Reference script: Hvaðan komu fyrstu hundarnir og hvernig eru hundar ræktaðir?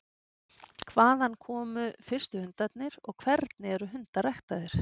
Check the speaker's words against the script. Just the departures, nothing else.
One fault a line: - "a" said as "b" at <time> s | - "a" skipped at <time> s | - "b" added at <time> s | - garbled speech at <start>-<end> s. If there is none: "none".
none